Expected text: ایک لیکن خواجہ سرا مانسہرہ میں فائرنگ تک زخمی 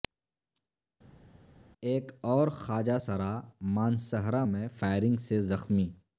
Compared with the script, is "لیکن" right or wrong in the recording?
wrong